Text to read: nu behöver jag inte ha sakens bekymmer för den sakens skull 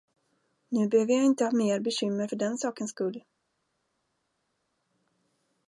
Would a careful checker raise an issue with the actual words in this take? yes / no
yes